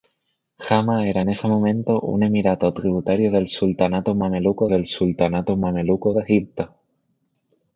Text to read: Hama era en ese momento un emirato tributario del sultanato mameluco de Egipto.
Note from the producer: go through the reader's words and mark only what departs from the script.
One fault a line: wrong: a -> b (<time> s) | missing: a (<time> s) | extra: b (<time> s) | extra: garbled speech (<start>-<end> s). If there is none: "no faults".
extra: del sultanato mameluco (4.7 s)